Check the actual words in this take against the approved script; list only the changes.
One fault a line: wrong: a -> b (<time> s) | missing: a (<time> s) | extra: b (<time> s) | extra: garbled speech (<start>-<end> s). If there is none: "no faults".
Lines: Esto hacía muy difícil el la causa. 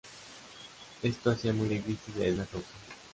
no faults